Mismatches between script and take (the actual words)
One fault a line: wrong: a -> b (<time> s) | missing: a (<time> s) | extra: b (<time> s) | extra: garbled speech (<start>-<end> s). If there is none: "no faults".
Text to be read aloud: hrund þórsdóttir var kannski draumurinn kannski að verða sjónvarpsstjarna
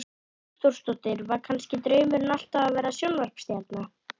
wrong: kannski -> alltaf (2.4 s)